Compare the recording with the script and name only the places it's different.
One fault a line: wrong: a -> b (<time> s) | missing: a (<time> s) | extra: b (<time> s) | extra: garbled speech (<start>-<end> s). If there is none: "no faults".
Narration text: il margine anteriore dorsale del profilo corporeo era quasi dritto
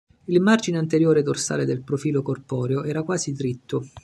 no faults